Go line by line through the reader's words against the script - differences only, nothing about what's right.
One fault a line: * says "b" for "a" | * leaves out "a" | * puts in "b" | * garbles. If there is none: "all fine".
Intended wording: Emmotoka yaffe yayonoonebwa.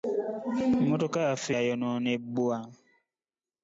all fine